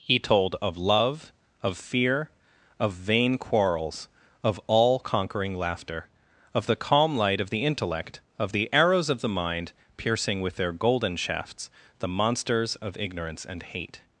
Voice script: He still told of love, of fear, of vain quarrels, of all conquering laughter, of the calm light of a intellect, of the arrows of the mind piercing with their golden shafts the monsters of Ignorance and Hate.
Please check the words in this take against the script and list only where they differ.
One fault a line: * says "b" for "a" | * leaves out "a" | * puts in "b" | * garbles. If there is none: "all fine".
* leaves out "still"
* says "the" for "a"